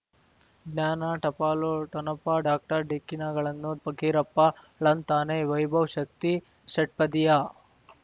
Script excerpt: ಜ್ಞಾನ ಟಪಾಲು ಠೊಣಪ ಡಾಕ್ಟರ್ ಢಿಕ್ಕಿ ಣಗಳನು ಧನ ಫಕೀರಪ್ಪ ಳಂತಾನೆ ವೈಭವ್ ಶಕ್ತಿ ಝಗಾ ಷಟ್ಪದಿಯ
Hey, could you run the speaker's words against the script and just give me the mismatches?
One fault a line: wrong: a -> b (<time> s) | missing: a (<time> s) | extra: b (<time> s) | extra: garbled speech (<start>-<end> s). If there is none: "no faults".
missing: ಧನ (3.7 s)
missing: ಝಗಾ (6.3 s)